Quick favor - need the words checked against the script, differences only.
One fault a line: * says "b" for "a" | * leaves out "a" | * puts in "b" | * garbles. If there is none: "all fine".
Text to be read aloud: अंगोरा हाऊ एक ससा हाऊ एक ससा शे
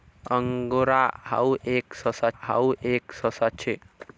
all fine